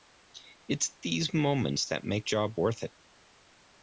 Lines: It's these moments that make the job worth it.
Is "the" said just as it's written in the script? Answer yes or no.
no